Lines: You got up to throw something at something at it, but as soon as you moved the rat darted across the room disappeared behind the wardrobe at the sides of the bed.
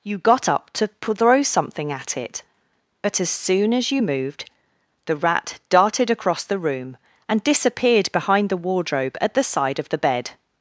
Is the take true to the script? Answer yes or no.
no